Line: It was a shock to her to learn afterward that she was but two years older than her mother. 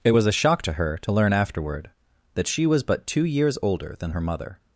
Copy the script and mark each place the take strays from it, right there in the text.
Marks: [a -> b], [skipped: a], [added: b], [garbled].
It was a shock to her to learn afterward that she was but two years older than her mother.